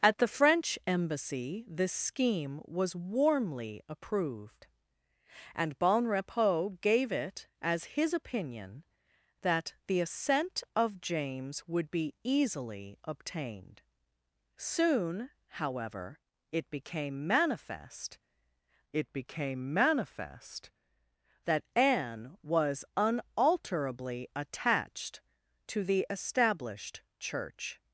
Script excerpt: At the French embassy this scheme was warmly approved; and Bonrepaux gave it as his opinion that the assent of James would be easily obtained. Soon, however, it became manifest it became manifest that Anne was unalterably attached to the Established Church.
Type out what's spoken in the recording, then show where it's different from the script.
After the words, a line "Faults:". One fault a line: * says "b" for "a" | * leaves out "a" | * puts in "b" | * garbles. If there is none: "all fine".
At the French embassy this scheme was warmly approved; and Bonrepaux gave it as his opinion that the assent of James would be easily obtained. Soon, however, it became manifest it became manifest that Anne was unalterably attached to the Established Church.
Faults:
all fine